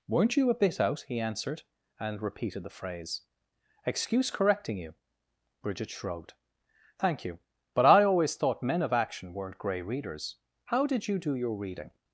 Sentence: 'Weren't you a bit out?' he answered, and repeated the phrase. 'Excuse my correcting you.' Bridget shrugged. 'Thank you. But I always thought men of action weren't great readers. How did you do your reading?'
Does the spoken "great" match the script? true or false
false